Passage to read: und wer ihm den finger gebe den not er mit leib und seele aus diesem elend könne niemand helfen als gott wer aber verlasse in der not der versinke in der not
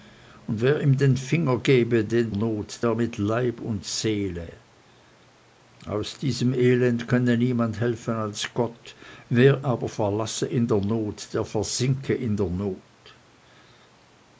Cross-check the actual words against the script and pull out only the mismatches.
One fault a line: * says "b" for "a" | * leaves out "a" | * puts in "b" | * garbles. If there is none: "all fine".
all fine